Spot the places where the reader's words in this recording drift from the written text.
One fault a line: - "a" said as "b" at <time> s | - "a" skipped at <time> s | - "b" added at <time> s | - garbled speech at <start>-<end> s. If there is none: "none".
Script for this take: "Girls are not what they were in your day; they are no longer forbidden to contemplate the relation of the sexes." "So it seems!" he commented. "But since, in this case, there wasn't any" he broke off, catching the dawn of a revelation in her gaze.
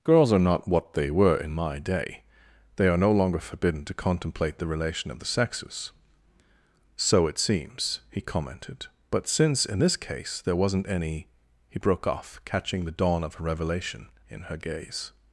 - "your" said as "my" at 1.5 s